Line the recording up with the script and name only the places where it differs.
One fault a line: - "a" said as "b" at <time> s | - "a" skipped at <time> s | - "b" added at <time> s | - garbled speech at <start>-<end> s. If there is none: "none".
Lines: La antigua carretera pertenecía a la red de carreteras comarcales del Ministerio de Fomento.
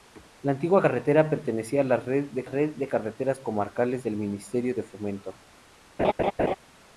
- "red de" added at 2.4 s